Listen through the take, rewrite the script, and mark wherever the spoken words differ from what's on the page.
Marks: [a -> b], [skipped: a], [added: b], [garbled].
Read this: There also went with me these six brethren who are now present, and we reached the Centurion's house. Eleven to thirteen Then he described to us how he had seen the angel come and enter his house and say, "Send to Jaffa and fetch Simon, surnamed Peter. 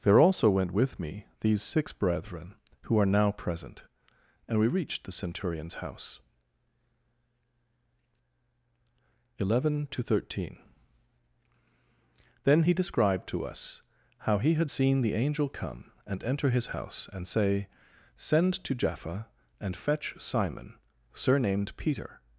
There also went with me these six brethren who are now present, and we reached the Centurion's house. Eleven to thirteen Then he described to us how he had seen the angel come and enter his house and say, "Send to Jaffa and fetch Simon, surnamed Peter.